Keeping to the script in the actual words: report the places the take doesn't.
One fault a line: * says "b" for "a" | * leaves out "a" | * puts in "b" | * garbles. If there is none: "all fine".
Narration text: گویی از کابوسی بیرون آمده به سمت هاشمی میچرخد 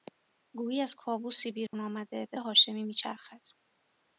* leaves out "سمت"